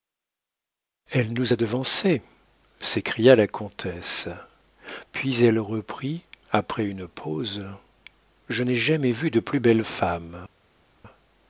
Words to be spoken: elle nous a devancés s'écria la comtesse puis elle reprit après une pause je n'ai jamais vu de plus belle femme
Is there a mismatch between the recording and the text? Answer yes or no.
no